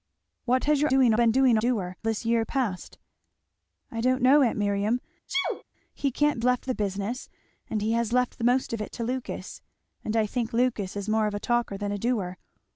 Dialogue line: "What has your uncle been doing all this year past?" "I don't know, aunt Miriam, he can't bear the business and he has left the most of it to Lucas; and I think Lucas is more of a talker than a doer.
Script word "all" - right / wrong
wrong